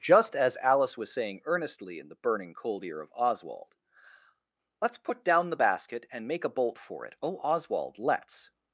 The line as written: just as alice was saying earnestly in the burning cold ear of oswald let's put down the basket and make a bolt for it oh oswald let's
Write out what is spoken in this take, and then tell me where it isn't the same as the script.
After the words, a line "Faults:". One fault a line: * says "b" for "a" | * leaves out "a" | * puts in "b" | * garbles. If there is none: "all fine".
just as alice was saying earnestly in the burning cold ear of oswald let's put down the basket and make a bolt for it oh oswald let's
Faults:
all fine